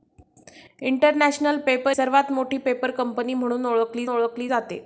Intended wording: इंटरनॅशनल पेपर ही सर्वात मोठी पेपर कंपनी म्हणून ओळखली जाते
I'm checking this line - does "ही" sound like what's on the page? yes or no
no